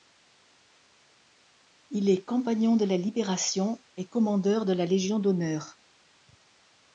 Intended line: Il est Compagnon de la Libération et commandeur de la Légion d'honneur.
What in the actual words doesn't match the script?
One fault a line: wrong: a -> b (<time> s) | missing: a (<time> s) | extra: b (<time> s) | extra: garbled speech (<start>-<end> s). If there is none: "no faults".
no faults